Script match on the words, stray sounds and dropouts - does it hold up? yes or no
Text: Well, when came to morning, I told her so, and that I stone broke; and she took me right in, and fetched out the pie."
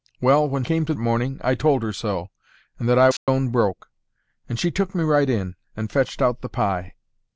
no